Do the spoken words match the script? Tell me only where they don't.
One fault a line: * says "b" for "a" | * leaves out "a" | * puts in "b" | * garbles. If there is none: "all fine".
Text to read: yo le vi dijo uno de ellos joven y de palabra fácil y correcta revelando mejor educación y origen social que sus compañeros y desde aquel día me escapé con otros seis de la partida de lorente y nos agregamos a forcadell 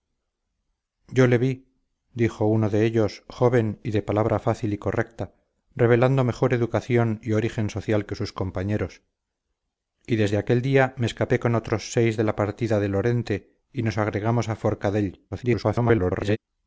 * garbles